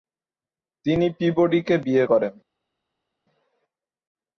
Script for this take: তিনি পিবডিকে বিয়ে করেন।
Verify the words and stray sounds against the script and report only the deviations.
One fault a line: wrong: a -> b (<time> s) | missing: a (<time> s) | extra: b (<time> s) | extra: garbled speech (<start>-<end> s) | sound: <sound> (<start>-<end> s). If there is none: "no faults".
no faults